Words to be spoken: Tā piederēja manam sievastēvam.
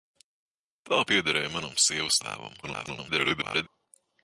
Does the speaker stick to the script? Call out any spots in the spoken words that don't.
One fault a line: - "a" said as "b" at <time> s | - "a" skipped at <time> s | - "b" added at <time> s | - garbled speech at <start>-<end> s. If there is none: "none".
- garbled speech at 2.6-3.7 s